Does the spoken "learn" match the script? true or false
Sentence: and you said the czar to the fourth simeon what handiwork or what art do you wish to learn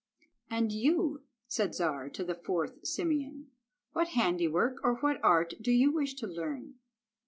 true